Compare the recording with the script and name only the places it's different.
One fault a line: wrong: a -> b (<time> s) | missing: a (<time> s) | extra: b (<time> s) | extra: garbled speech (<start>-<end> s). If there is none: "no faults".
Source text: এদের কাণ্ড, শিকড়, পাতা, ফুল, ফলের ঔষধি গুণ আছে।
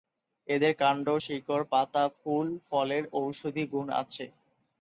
no faults